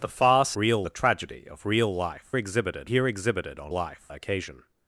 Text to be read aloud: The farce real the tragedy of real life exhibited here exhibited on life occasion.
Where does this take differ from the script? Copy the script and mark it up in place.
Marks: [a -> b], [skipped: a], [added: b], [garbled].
The farce real the tragedy of real life exhibited here exhibited on life occasion.